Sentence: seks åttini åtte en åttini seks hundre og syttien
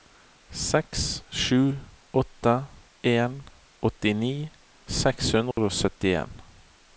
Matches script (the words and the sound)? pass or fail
fail